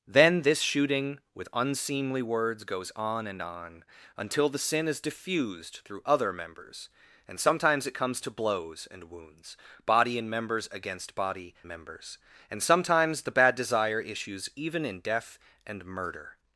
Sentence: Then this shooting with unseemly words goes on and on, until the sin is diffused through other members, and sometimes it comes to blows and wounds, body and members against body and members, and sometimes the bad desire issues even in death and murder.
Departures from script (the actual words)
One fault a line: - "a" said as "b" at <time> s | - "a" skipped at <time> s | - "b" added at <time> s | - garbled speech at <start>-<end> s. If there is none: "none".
- "and" skipped at 11.5 s